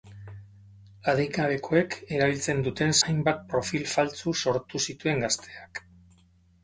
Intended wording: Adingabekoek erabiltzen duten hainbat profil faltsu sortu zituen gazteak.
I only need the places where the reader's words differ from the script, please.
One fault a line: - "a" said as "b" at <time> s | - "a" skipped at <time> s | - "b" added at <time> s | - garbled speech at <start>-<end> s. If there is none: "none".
none